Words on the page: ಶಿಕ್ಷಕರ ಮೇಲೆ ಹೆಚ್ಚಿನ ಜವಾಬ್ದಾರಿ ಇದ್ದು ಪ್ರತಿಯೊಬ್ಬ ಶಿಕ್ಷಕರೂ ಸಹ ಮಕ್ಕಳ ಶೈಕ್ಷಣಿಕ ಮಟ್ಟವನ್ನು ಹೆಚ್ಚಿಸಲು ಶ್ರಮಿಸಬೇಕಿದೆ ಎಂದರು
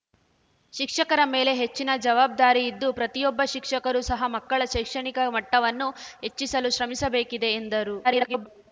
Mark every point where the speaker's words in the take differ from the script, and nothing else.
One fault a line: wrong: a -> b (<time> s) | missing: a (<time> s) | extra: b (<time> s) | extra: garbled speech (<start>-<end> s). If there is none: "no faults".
extra: garbled speech (8.0-8.5 s)